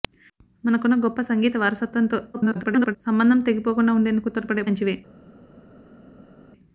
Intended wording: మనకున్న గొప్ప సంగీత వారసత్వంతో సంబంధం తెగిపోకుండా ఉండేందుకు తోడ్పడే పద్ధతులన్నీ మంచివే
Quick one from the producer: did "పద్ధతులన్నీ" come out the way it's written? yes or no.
no